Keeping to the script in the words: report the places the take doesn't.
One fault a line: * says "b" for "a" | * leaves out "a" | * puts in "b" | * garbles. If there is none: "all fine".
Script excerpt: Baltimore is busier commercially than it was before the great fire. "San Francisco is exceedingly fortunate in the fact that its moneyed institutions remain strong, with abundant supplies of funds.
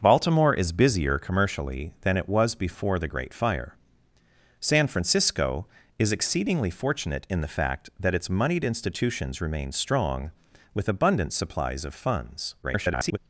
* garbles